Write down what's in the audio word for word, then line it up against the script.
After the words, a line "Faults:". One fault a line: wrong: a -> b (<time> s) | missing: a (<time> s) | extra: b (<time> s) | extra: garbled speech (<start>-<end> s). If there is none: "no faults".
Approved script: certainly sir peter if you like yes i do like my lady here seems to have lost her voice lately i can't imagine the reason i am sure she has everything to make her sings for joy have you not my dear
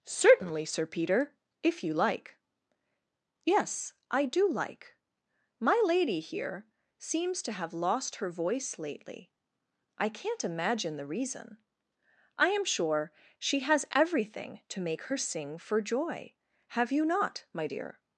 certainly sir peter if you like yes i do like my lady here seems to have lost her voice lately i can't imagine the reason i am sure she has everything to make her sing for joy have you not my dear
Faults:
wrong: sings -> sing (15.2 s)